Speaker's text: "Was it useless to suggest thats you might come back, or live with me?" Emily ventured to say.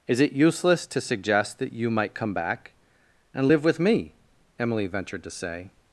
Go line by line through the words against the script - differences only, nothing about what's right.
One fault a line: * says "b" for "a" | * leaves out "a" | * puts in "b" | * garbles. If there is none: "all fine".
* says "Is" for "Was"
* says "that" for "thats"
* says "and" for "or"